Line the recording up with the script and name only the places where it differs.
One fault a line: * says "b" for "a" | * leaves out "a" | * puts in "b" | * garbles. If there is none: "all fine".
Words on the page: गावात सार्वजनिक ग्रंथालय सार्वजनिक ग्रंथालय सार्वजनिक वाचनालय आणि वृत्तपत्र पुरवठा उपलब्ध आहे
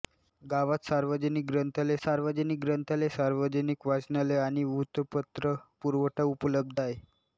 all fine